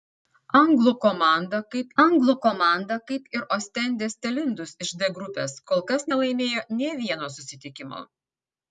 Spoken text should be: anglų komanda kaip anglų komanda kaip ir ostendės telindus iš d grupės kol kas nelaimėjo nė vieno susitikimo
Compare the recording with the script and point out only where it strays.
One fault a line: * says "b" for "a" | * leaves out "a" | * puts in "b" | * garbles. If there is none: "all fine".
all fine